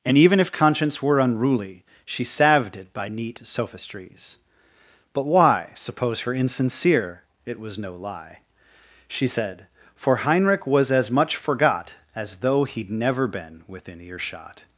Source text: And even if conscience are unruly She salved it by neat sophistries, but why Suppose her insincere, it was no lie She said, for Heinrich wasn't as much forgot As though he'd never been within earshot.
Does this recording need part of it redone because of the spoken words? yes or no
yes